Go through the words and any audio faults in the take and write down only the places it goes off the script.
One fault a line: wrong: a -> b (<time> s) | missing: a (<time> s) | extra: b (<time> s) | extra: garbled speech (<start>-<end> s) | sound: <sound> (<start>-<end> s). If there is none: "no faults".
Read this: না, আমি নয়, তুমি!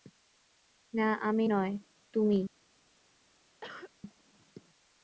sound: cough (3.6-3.9 s)